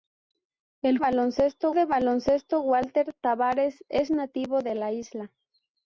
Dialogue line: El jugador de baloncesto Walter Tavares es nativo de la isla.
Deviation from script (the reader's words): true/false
true